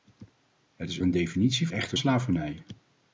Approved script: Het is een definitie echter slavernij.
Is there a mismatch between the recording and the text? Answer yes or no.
no